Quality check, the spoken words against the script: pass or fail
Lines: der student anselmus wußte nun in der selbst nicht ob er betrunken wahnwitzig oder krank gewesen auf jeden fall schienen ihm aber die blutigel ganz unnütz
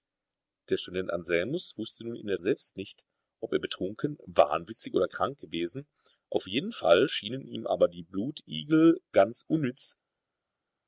pass